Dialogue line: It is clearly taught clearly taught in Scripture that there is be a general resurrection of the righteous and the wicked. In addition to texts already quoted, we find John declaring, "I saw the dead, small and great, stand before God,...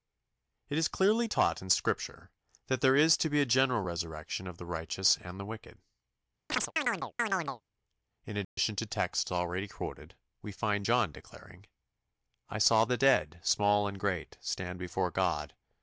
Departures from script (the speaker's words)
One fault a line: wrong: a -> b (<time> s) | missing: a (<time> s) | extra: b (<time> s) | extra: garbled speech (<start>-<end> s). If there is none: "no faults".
missing: clearly taught (1.6 s)
extra: to (3.2 s)